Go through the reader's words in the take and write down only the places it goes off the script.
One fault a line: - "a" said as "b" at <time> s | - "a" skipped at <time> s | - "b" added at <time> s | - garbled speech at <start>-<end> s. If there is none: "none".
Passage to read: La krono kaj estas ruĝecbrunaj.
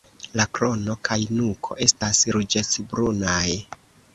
- "nuko" added at 1.4 s